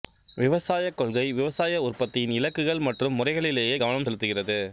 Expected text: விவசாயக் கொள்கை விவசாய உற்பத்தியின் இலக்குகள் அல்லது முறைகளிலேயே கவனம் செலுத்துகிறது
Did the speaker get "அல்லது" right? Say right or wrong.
wrong